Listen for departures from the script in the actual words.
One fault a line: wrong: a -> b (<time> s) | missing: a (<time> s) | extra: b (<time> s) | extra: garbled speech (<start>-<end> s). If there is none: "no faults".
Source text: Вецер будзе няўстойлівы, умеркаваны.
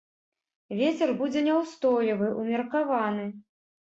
no faults